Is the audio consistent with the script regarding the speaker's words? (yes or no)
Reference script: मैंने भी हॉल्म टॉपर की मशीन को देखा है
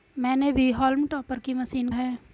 no